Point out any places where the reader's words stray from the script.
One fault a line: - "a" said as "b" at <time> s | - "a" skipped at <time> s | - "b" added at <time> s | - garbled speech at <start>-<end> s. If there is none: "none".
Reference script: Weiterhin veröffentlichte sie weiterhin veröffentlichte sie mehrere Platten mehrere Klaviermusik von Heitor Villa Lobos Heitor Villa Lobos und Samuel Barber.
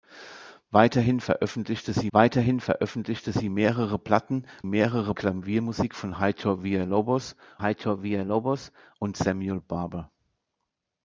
none